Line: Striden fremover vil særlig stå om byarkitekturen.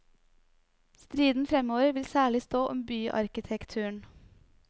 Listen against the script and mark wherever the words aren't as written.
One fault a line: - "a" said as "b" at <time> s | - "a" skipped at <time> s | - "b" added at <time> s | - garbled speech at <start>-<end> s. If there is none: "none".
none